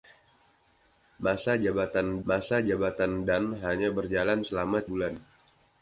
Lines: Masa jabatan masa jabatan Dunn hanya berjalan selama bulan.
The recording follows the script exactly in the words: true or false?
true